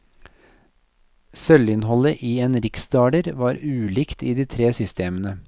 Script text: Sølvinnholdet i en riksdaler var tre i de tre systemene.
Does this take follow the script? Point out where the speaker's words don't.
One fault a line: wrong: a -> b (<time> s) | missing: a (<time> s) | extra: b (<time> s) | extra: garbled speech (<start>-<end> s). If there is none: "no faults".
wrong: tre -> ulikt (3.6 s)